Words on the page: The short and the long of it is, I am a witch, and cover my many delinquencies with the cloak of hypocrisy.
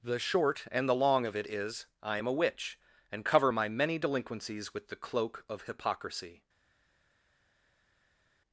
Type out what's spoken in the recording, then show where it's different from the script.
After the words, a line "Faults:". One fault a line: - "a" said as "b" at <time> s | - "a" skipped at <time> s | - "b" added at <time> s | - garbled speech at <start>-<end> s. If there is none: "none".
The short and the long of it is, I am a witch, and cover my many delinquencies with the cloak of hypocrisy.
Faults:
none